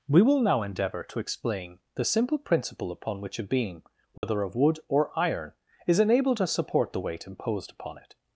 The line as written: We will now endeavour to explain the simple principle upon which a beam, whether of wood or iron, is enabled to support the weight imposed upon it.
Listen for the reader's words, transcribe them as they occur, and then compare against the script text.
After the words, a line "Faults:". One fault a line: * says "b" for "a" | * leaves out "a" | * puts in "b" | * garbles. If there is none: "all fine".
We will now endeavour to explain the simple principle upon which a beam, whether of wood or iron, is enabled to support the weight imposed upon it.
Faults:
all fine